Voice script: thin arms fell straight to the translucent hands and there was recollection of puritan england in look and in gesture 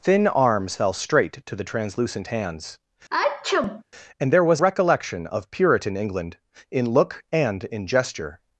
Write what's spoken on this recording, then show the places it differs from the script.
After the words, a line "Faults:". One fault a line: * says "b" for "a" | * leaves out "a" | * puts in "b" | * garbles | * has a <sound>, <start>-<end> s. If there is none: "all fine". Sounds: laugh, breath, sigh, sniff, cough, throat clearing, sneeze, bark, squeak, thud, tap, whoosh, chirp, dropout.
thin arms fell straight to the translucent hands and there was recollection of puritan england in look and in gesture
Faults:
* has a sneeze, 3.1-3.8 s